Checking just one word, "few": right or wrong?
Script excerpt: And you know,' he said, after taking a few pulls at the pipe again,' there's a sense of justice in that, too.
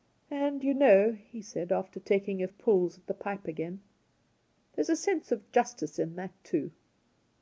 wrong